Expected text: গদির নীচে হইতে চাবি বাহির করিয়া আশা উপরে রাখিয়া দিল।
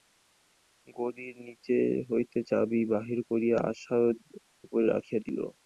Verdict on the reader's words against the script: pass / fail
pass